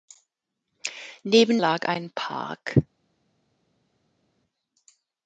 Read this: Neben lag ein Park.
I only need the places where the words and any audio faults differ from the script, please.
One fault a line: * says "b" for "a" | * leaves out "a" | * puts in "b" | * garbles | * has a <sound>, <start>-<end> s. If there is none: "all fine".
all fine